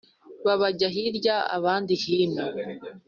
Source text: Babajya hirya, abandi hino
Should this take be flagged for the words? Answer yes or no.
no